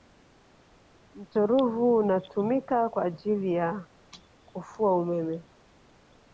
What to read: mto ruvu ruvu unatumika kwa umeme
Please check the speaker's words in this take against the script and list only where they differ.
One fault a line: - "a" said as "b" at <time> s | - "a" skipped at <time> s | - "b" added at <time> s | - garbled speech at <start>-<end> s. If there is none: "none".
- "ruvu" skipped at 1.9 s
- "ajili ya kufua" added at 3.0 s